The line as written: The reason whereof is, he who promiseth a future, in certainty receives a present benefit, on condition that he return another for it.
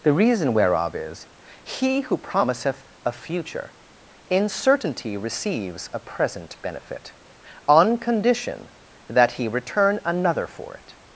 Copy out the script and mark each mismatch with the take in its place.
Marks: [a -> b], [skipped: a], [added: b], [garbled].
The reason whereof is, he who promiseth a future, in certainty receives a present benefit, on condition that he return another for it.